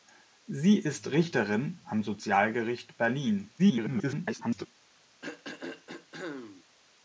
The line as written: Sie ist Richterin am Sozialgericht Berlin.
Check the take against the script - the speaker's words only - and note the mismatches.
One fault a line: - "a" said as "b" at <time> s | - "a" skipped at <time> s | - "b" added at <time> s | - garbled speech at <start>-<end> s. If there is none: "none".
- garbled speech at 3.6-4.7 s